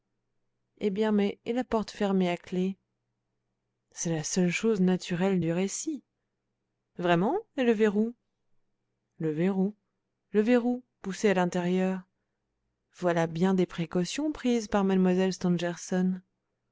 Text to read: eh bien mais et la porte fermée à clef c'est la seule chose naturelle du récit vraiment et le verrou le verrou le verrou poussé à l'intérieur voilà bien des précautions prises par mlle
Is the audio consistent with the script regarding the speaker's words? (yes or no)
yes